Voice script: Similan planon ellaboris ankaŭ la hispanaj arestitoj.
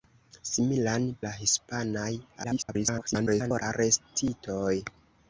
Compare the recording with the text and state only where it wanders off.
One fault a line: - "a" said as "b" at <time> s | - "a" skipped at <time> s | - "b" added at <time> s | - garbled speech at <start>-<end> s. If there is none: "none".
- "planon ellaboris ankaŭ" skipped at 1.1 s
- garbled speech at 2.4-3.6 s